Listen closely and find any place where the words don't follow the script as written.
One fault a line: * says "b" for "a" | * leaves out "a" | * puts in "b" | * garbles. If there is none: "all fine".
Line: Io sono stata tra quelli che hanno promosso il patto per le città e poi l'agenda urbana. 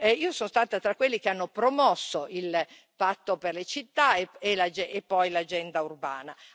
all fine